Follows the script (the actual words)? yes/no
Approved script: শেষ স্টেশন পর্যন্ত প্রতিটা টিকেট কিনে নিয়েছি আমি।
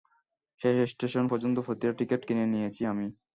yes